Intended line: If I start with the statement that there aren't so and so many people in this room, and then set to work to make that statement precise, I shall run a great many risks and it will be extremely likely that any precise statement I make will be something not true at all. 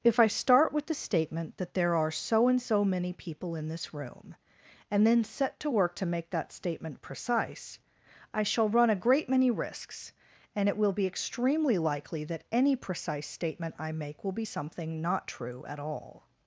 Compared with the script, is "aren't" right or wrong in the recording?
wrong